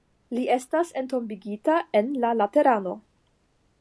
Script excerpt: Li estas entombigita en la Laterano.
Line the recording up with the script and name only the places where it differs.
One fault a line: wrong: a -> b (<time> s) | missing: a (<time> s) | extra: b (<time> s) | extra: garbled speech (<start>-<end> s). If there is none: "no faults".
no faults